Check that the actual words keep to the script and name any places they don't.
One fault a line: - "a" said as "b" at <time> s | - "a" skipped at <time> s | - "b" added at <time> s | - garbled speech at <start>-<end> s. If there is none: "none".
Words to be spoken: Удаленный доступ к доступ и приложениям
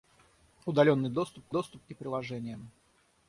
none